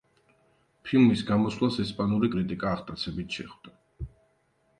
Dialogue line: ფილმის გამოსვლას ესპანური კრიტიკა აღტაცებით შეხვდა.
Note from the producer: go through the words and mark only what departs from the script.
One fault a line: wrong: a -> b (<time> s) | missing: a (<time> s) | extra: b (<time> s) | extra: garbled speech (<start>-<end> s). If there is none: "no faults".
no faults